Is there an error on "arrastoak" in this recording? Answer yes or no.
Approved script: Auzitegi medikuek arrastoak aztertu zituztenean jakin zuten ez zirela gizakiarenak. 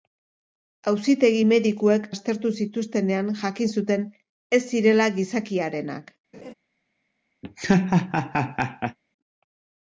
yes